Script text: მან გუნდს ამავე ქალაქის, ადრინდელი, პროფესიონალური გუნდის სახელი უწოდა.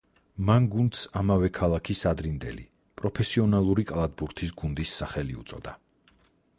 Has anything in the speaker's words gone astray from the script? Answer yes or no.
yes